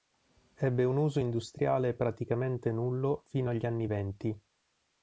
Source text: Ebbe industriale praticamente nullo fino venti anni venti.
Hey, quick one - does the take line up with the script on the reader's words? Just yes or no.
no